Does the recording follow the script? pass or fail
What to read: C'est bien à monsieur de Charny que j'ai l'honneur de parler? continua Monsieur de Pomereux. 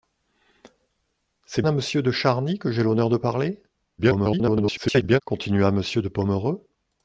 fail